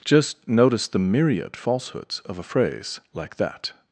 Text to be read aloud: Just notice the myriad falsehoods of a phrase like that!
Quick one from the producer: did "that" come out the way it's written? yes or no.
yes